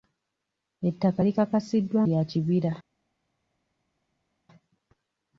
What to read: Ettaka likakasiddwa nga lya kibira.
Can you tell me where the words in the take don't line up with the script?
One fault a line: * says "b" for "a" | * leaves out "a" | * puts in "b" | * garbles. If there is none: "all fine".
* leaves out "nga"